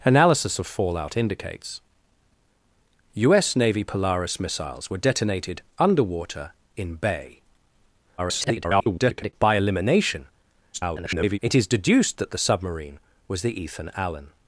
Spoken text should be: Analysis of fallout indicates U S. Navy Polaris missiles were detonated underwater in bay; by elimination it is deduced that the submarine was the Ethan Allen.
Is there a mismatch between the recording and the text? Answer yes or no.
yes